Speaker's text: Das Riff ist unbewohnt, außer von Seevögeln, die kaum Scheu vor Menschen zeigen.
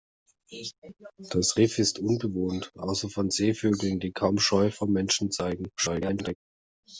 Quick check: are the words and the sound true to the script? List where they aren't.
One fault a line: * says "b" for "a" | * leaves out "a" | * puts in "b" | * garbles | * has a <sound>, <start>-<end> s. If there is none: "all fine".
* garbles